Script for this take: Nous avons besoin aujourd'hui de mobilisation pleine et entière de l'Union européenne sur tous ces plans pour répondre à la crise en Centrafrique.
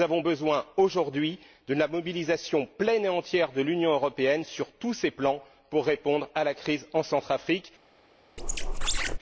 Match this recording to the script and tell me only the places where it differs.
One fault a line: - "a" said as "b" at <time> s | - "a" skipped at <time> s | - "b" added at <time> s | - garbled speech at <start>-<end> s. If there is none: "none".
- "la" added at 1.8 s